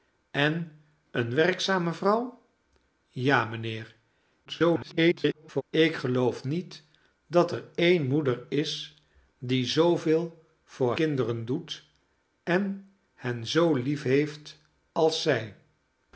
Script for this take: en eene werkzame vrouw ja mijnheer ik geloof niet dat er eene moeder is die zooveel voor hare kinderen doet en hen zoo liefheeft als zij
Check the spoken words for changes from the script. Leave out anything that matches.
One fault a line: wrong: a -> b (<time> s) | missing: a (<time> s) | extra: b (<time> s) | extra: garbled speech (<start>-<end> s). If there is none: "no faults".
extra: garbled speech (4.5-5.6 s)
missing: hare (10.9 s)